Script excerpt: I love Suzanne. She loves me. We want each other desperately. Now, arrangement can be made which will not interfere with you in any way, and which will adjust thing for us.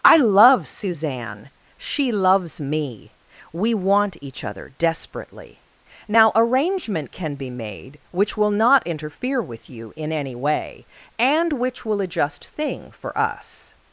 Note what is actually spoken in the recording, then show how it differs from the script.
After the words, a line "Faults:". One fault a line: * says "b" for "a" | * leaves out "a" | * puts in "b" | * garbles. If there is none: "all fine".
I love Suzanne. She loves me. We want each other desperately. Now, arrangement can be made which will not interfere with you in any way, and which will adjust thing for us.
Faults:
all fine